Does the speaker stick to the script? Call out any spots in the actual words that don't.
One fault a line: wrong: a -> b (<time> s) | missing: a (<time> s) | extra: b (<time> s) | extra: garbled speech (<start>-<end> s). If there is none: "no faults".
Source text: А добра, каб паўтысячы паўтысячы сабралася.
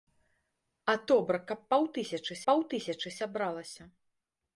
no faults